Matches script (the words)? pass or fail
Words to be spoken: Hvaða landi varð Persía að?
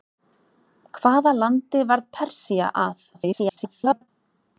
fail